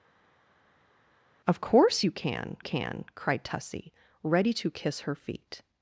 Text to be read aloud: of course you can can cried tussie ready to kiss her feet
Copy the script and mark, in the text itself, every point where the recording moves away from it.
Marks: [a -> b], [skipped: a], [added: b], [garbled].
of course you can can cried tussie ready to kiss her feet